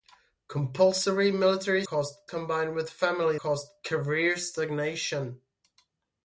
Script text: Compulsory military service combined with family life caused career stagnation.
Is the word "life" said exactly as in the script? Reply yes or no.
no